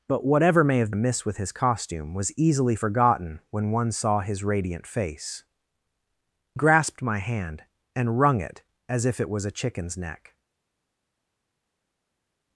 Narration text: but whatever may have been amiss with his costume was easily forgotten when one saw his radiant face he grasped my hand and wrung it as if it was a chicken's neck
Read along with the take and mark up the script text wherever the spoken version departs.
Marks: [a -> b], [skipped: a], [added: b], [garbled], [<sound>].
but whatever may have [skipped: been] amiss with his costume was easily forgotten when one saw his radiant face [skipped: he] grasped my hand and wrung it as if it was a chicken's neck